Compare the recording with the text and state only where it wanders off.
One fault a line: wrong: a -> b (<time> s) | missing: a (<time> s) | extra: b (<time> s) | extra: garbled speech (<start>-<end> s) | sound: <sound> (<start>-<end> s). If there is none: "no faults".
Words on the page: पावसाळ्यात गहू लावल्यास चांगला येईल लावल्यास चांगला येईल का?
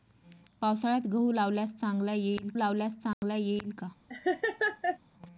sound: dropout (3.1-3.2 s)
sound: laugh (4.1-5.0 s)